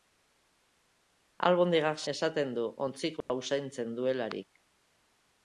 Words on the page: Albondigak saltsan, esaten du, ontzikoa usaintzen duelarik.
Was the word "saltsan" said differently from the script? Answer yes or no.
yes